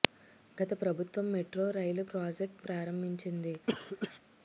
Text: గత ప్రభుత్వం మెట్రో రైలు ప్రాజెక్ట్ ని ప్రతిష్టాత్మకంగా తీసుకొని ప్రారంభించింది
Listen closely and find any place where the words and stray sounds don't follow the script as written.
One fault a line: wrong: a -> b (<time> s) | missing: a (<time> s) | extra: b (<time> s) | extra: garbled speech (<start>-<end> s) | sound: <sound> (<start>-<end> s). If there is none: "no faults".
missing: ని ప్రతిష్టాత్మకంగా తీసుకొని (2.6 s)
sound: cough (3.7-4.2 s)